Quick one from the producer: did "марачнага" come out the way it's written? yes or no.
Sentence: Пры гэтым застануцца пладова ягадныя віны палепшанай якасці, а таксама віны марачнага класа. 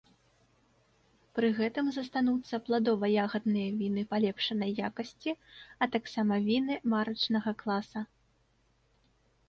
yes